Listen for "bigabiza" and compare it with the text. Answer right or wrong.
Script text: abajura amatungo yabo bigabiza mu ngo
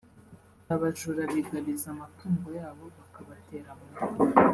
wrong